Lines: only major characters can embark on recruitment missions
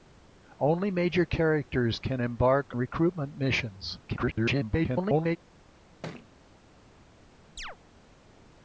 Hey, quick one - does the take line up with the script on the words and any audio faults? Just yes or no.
no